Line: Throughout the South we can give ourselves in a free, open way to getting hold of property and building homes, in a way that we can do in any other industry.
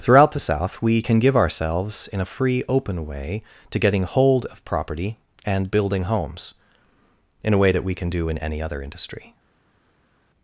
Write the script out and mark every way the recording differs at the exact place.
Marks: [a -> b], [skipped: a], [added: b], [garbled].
Throughout the South we can give ourselves in a free, open way to getting hold of property and building homes, in a way that we can do in any other industry.